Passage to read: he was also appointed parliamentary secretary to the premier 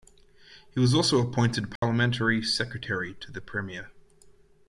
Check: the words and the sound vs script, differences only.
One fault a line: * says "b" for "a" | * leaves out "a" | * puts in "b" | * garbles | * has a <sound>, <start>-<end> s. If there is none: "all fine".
* has a dropout, 1.8-1.8 s